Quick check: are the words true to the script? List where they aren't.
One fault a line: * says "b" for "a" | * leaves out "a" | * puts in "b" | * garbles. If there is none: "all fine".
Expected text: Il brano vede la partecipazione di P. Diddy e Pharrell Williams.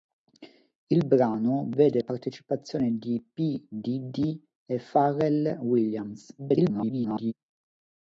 * leaves out "la"
* garbles